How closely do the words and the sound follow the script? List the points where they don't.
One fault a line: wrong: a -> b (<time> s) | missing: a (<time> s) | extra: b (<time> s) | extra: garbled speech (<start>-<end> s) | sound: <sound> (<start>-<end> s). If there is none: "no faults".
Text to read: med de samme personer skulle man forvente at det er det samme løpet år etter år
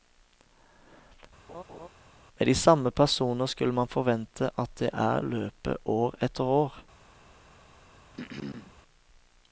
sound: laugh (1.5-1.9 s)
missing: det samme (5.2 s)
sound: throat clearing (8.1-8.8 s)